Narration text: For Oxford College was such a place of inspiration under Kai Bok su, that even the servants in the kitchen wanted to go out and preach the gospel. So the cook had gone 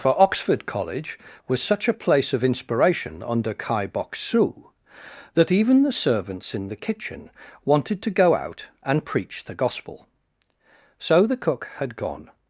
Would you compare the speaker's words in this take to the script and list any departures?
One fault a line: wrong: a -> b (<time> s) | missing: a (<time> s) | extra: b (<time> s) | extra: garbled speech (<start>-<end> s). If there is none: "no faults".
no faults